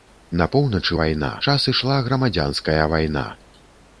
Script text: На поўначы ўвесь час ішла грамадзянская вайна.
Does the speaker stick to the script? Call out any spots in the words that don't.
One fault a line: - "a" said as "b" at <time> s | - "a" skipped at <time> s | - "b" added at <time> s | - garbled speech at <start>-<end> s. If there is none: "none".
- "ўвесь" said as "вайна" at 1.0 s